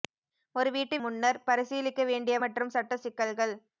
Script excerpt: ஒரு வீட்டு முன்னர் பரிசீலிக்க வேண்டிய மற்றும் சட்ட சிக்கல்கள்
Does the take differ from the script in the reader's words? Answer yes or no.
no